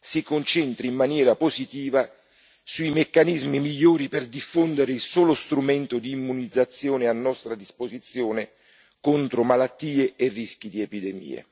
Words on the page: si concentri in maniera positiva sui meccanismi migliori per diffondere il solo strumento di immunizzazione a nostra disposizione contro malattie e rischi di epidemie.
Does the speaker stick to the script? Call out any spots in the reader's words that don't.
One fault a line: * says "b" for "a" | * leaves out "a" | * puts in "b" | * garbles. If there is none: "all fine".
all fine